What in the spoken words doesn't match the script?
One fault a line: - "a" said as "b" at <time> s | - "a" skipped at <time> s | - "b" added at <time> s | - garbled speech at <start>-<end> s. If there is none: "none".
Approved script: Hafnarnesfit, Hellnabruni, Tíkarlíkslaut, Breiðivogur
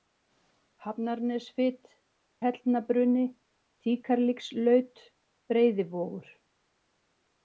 none